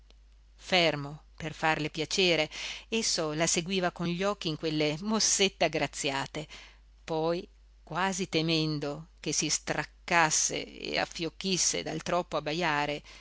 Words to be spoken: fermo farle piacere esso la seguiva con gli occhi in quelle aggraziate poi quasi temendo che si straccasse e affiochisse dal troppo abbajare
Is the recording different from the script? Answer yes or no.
yes